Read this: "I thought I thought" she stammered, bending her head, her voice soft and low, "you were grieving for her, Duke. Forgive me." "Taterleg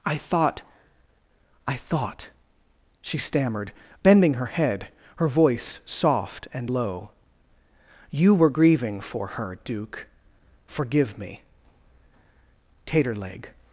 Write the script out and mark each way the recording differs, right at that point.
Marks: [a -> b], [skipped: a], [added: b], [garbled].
"I thought I thought" she stammered, bending her head, her voice soft and low, "you were grieving for her, Duke. Forgive me." "Taterleg